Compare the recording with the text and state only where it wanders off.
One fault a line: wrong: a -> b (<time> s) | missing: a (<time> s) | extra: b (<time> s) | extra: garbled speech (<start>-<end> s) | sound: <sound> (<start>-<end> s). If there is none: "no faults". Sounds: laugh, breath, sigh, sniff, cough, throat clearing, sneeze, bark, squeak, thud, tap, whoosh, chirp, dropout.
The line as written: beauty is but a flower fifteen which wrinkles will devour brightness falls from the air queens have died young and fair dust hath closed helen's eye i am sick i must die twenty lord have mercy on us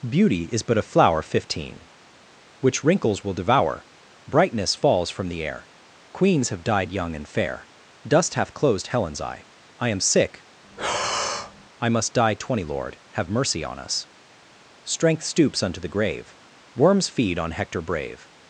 sound: breath (10.6-11.7 s)
extra: strength stoops unto the grave worms feed on hector brave (14.8 s)